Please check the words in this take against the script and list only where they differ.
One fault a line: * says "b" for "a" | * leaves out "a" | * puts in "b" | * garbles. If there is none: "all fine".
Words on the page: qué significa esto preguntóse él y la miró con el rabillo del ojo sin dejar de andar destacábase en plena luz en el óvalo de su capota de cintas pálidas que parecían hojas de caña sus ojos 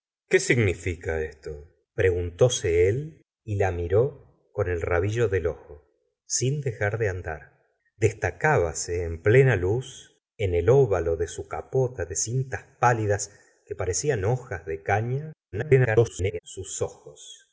* garbles